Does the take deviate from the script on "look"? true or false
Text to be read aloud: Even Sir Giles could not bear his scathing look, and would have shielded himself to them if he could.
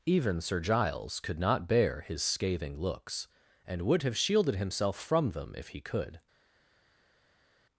true